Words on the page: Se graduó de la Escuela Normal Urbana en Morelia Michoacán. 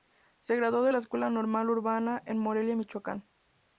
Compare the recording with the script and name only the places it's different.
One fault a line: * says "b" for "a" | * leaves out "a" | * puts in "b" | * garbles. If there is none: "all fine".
all fine